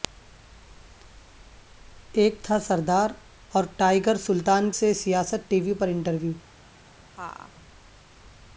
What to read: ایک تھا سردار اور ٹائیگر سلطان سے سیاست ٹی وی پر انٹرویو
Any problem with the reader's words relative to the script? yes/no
no